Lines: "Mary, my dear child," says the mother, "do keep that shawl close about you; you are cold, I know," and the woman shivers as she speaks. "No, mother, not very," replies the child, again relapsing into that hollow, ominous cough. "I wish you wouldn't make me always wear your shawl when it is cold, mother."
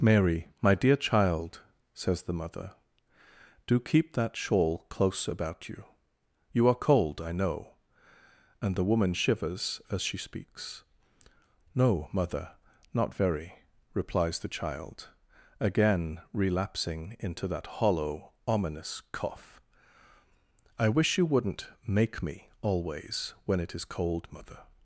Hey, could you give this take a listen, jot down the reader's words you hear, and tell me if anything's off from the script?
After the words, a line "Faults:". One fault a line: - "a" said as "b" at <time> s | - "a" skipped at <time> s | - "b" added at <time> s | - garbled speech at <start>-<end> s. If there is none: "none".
"Mary, my dear child," says the mother, "do keep that shawl close about you; you are cold, I know," and the woman shivers as she speaks. "No, mother, not very," replies the child, again relapsing into that hollow, ominous cough. "I wish you wouldn't make me always when it is cold, mother."
Faults:
- "wear your shawl" skipped at 23.4 s